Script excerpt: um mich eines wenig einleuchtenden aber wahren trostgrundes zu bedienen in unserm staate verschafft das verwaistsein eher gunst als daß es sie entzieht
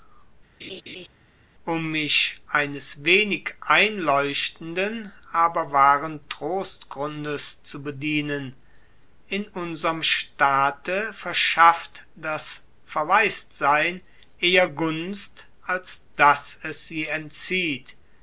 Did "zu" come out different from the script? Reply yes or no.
no